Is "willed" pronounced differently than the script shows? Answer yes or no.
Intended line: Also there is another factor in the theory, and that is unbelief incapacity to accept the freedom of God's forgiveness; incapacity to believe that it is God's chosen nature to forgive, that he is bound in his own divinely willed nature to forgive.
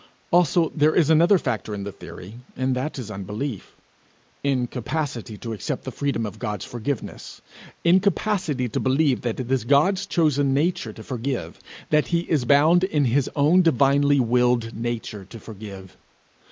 no